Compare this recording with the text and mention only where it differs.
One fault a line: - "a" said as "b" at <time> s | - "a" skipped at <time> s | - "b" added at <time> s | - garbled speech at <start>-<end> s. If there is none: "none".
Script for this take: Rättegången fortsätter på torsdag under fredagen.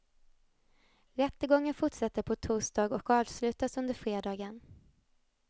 - "och avslutas" added at 3.0 s